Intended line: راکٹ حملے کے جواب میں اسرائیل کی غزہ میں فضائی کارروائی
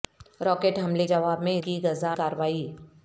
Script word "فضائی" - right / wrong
wrong